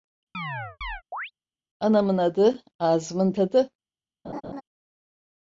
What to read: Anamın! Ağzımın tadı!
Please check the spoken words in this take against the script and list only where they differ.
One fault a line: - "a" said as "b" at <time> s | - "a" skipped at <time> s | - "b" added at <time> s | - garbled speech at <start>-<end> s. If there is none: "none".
- "adı" added at 2.2 s